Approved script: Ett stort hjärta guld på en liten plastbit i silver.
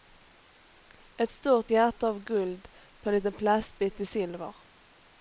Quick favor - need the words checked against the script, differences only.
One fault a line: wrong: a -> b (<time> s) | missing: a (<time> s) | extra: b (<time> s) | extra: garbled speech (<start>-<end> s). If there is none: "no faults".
extra: av (2.1 s)